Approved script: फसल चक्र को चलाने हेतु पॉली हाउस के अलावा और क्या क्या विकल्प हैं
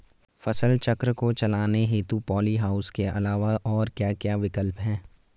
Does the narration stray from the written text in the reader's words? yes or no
no